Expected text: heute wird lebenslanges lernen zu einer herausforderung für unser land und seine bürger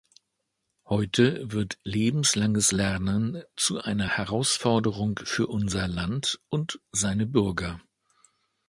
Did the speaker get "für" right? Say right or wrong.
right